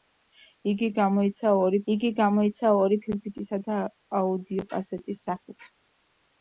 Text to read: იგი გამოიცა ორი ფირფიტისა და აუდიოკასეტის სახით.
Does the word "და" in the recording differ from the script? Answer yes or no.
no